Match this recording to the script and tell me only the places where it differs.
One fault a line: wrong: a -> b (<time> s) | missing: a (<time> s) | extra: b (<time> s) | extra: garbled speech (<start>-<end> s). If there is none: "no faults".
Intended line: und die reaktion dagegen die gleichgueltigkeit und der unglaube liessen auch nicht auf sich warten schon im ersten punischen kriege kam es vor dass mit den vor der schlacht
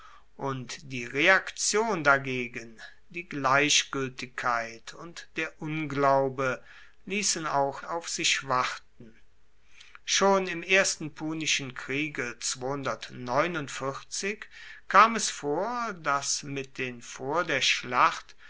missing: nicht (7.8 s)